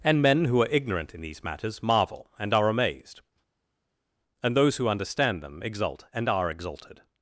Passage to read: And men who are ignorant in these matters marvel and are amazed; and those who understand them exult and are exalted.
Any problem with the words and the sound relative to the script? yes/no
no